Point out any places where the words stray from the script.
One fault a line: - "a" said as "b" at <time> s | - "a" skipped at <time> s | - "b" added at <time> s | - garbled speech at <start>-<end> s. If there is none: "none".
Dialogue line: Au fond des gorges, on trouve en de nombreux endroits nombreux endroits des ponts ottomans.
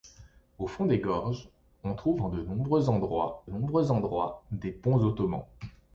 none